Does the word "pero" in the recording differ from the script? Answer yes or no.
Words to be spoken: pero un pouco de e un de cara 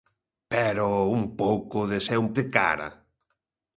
no